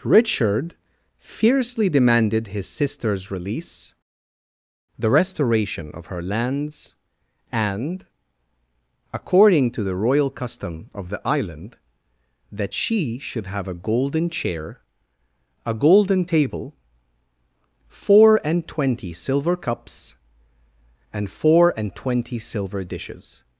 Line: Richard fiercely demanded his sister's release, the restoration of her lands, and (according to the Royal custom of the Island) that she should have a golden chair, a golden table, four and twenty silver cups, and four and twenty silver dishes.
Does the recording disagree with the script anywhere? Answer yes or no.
no